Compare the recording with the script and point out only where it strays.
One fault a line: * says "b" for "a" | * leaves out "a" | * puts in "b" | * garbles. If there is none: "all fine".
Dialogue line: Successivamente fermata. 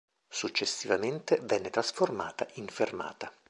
* puts in "venne trasformata in"